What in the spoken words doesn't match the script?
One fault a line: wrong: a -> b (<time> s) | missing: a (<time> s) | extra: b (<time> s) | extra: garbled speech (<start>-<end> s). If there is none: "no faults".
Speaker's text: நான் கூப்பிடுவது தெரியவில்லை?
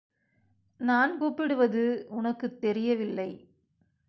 extra: உனக்குத் (2.1 s)